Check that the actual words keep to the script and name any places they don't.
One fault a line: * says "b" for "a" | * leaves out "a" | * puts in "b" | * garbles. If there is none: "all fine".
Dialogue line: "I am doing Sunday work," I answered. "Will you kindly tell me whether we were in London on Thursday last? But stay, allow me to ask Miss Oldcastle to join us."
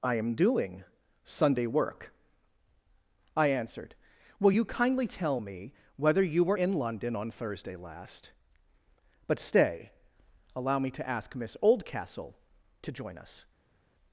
* says "you" for "we"